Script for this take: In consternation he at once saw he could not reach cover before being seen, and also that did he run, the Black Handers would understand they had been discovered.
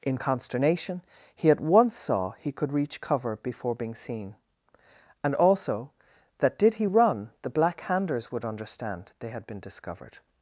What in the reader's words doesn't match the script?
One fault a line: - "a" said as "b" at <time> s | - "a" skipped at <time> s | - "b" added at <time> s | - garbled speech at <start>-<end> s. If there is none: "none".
- "not" skipped at 2.7 s